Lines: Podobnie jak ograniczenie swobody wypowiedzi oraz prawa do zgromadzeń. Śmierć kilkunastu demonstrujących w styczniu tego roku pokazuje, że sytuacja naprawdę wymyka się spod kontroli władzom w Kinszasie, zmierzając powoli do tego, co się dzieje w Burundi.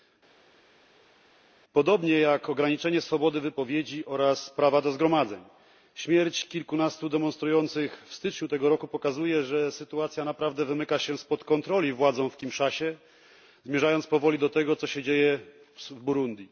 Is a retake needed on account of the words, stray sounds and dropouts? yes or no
no